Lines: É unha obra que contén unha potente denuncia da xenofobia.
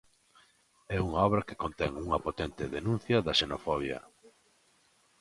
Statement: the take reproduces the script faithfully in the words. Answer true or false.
true